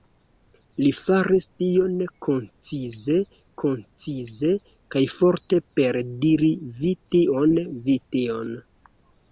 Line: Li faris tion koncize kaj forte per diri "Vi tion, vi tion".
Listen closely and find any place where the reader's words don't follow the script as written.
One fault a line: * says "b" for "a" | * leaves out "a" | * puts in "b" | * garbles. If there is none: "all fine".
* puts in "koncize"